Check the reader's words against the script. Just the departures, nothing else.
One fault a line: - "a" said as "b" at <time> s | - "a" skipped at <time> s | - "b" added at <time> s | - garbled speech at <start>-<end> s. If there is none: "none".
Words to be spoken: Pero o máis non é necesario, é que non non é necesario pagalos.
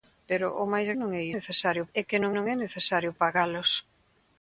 none